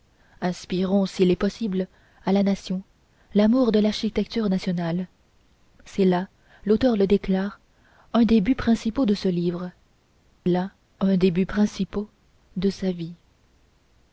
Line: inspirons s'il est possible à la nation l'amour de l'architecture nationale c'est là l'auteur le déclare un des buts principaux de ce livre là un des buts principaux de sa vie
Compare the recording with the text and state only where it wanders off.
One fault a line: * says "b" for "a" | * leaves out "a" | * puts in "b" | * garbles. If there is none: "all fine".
all fine